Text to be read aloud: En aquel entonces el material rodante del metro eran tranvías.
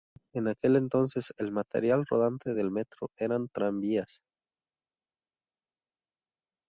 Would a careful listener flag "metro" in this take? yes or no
no